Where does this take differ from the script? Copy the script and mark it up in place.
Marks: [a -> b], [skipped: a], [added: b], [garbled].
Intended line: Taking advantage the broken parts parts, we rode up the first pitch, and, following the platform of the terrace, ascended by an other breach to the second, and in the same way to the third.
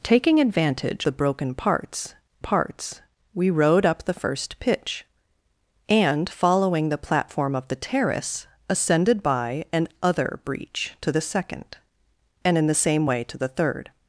Taking advantage the broken parts parts, we rode up the first pitch, and, following the platform of the terrace, ascended by an other breach to the second, and in the same way to the third.